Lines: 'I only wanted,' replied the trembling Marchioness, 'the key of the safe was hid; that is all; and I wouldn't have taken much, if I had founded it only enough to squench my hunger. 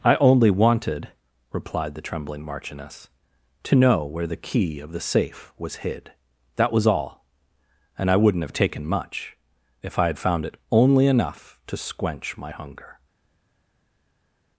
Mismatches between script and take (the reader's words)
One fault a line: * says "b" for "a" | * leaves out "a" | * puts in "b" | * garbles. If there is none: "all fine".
* puts in "to know where"
* says "was" for "is"
* says "found" for "founded"